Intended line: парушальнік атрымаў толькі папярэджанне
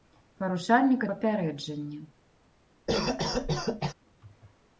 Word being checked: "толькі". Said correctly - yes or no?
no